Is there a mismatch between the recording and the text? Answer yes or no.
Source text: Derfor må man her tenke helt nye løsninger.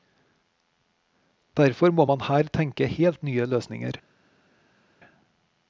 no